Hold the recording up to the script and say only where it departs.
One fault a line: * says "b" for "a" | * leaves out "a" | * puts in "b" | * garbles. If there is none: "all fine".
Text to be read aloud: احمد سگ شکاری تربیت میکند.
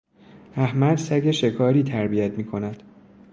all fine